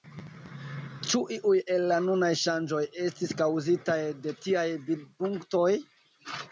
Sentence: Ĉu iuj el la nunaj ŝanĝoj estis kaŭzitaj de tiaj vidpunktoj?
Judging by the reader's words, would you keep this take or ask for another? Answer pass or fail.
pass